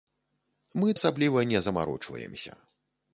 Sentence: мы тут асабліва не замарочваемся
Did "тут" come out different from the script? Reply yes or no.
yes